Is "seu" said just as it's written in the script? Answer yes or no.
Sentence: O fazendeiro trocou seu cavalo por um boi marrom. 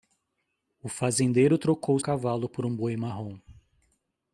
no